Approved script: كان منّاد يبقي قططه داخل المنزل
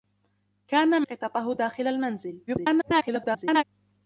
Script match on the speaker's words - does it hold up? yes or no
no